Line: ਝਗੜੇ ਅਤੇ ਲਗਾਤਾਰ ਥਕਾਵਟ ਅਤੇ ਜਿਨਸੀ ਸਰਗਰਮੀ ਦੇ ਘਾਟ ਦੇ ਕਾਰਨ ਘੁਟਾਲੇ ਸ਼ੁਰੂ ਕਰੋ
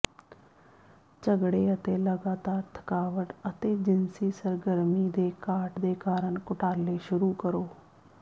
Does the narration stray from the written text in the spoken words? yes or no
no